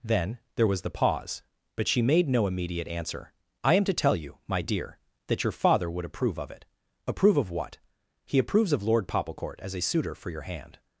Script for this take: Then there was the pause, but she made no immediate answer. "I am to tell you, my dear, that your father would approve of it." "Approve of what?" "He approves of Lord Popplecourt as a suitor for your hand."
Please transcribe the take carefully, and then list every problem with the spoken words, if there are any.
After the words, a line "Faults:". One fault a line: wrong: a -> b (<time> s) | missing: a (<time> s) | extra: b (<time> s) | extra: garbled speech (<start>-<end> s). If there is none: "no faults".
Then there was the pause, but she made no immediate answer. "I am to tell you, my dear, that your father would approve of it." "Approve of what?" "He approves of Lord Popplecourt as a suitor for your hand."
Faults:
no faults